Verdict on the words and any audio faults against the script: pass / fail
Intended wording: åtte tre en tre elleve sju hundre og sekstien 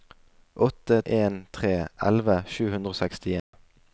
fail